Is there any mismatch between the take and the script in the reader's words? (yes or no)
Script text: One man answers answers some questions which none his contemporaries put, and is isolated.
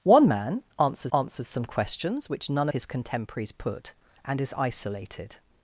no